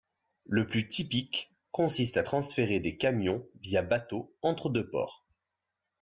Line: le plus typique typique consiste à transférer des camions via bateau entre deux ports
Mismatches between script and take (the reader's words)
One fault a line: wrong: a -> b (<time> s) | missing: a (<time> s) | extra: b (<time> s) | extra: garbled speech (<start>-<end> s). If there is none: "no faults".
missing: typique (1.5 s)